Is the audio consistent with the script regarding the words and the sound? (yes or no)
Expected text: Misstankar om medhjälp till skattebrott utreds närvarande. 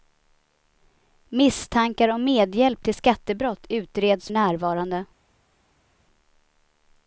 yes